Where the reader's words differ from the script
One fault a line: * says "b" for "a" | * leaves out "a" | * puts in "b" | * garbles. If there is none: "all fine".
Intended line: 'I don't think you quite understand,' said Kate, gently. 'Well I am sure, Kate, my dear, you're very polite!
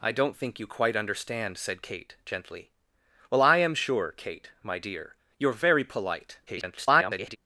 * garbles